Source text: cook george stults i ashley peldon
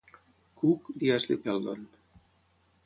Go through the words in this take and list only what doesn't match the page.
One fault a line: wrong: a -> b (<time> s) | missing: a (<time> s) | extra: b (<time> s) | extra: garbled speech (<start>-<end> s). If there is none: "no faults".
missing: george stults (0.9 s)